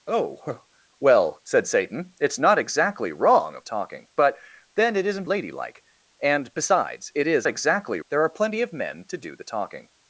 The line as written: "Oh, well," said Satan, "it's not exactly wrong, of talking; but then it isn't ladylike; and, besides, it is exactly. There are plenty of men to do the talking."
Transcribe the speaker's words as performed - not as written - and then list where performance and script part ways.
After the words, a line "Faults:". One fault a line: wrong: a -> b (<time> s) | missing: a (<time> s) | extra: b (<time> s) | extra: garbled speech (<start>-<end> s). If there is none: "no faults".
"Oh, well," said Satan, "it's not exactly wrong, of talking; but then it isn't ladylike; and, besides, it is exactly. There are plenty of men to do the talking."
Faults:
no faults